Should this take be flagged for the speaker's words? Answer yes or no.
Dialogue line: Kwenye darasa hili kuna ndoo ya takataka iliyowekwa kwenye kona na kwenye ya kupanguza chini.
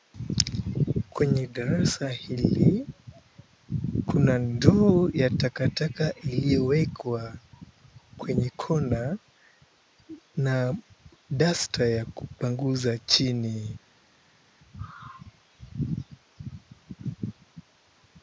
yes